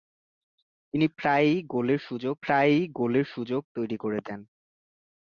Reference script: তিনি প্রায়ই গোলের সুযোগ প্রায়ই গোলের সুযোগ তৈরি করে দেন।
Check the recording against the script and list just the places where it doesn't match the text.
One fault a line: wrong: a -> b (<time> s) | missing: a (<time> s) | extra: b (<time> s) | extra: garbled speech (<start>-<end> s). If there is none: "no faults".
no faults